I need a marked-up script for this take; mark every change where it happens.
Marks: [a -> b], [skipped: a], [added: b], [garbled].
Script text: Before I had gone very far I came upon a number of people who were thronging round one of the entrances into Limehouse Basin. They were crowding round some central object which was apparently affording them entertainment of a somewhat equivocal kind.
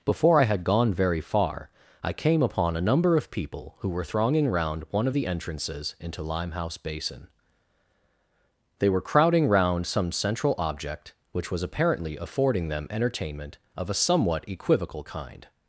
Before I had gone very far I came upon a number of people who were thronging round one of the entrances into Limehouse Basin. They were crowding round some central object which was apparently affording them entertainment of a somewhat equivocal kind.